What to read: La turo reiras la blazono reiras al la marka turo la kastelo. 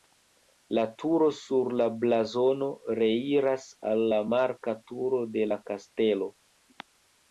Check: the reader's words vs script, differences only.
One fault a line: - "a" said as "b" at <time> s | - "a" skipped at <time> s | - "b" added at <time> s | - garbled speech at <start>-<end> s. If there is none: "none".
- "reiras" said as "sur" at 1.4 s
- "de" added at 5.4 s